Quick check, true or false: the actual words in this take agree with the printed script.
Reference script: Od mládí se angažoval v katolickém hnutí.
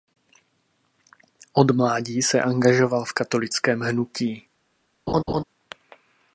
true